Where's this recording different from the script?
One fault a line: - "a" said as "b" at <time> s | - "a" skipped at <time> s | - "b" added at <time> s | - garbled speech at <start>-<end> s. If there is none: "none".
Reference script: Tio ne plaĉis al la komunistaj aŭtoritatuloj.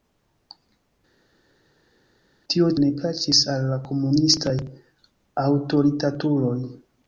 none